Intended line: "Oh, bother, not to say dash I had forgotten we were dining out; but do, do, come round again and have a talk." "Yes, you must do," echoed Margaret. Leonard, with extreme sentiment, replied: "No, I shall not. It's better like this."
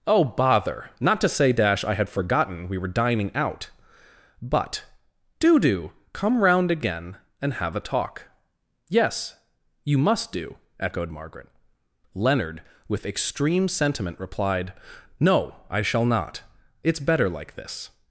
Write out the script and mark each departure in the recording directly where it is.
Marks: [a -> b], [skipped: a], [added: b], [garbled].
"Oh, bother, not to say dash I had forgotten we were dining out; but do, do, come round again and have a talk." "Yes, you must do," echoed Margaret. Leonard, with extreme sentiment, replied: "No, I shall not. It's better like this."